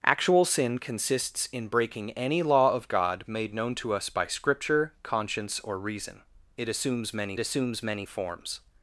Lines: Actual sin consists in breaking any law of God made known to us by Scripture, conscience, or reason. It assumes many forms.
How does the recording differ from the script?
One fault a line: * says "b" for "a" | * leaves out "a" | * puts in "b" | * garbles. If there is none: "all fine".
* puts in "assumes many"